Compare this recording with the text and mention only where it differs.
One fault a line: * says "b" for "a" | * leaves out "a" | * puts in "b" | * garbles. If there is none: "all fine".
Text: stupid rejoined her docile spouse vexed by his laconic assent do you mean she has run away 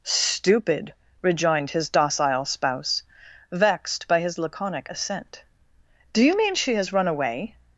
* says "his" for "her"